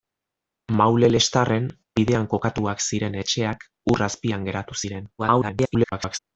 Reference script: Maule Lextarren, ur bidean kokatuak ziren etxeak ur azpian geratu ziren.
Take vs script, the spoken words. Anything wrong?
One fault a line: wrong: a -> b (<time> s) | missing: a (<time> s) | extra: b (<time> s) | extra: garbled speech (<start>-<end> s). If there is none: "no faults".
missing: ur (1.7 s)
extra: garbled speech (5.2-6.2 s)